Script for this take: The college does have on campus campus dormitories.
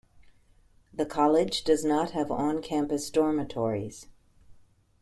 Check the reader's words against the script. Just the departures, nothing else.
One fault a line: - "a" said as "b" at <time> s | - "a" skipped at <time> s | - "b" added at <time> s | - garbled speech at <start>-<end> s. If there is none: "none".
- "not" added at 1.8 s
- "campus" skipped at 3.1 s